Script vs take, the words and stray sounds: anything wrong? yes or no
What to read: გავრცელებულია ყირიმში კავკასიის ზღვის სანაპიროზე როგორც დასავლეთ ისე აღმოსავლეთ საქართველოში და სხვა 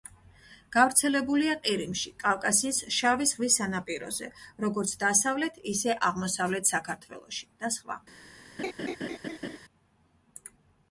yes